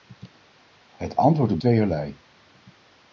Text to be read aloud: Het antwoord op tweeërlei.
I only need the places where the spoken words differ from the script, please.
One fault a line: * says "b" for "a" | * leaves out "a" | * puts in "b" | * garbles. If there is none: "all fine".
all fine